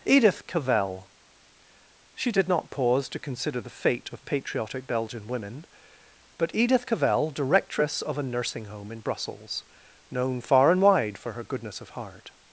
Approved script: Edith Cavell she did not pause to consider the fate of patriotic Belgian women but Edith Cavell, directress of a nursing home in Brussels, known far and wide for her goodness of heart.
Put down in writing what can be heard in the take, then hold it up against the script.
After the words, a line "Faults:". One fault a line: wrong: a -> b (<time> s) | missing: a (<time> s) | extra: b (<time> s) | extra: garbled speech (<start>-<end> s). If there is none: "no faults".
Edith Cavell she did not pause to consider the fate of patriotic Belgian women but Edith Cavell, directress of a nursing home in Brussels, known far and wide for her goodness of heart.
Faults:
no faults